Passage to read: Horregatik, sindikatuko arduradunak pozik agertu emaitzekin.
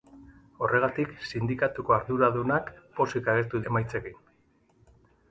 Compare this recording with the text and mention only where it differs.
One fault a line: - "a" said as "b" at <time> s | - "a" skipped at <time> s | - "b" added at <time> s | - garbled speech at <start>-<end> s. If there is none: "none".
none